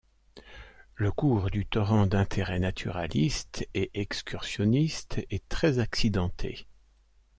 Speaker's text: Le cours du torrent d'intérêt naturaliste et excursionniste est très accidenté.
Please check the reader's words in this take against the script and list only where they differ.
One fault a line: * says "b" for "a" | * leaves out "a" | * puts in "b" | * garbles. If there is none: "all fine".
all fine